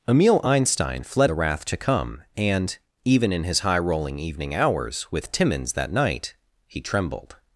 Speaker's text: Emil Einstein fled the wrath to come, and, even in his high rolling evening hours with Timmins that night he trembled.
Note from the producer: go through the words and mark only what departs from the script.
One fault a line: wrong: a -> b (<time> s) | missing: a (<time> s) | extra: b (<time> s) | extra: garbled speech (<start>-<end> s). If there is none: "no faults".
no faults